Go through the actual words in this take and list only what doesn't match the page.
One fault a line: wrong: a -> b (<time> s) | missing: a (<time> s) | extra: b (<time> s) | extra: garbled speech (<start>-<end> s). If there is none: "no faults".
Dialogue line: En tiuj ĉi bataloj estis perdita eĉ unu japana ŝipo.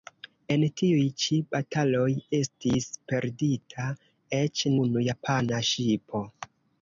no faults